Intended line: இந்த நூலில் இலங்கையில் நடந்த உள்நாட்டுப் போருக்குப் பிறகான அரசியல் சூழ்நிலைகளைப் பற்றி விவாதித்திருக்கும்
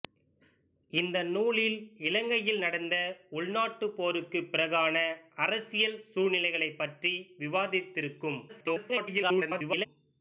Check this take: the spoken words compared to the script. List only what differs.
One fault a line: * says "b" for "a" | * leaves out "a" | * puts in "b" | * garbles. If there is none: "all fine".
* garbles